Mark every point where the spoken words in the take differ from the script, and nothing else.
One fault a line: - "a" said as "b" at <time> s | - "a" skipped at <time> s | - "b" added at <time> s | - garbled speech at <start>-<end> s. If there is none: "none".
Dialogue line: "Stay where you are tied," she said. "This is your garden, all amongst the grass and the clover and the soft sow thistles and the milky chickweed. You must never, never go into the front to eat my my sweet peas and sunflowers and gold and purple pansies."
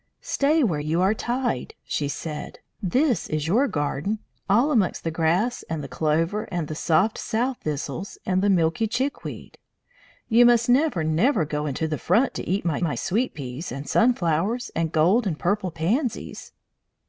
none